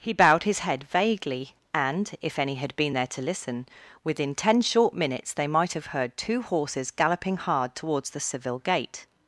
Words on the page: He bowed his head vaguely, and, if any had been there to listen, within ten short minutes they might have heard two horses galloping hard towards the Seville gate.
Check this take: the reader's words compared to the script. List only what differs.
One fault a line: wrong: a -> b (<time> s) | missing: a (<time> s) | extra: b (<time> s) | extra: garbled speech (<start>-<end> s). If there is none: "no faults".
no faults